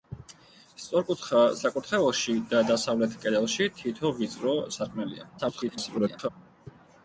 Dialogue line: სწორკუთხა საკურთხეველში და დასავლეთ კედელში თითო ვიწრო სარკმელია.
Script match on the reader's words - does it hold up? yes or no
no